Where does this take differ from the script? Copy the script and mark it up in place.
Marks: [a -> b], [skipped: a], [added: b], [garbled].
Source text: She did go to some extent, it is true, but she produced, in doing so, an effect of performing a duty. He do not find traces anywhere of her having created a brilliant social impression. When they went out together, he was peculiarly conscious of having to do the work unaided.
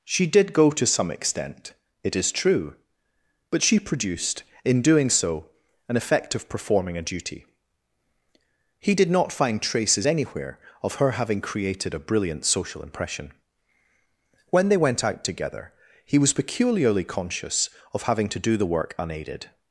She did go to some extent, it is true, but she produced, in doing so, an effect of performing a duty. He [do -> did] not find traces anywhere of her having created a brilliant social impression. When they went out together, he was peculiarly conscious of having to do the work unaided.